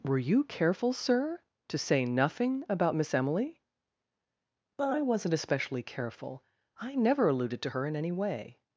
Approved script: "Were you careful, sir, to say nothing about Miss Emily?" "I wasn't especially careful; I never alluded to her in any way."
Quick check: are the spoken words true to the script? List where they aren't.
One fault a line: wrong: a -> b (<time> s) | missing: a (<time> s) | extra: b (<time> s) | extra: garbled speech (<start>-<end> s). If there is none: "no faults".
no faults